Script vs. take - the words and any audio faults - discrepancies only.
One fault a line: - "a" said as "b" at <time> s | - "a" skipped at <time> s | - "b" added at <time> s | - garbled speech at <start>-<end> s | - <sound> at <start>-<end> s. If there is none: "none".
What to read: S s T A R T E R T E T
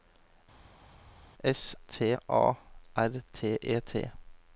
- "s" skipped at 1.8 s
- "R T E" skipped at 3.8 s